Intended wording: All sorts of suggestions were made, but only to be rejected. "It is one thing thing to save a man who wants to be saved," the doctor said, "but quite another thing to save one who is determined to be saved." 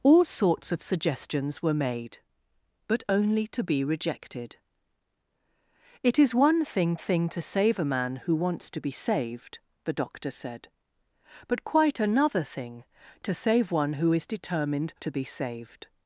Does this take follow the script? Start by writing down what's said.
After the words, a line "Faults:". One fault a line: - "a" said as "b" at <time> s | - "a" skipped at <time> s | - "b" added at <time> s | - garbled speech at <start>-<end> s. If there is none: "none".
All sorts of suggestions were made, but only to be rejected. "It is one thing thing to save a man who wants to be saved," the doctor said, "but quite another thing to save one who is determined to be saved."
Faults:
none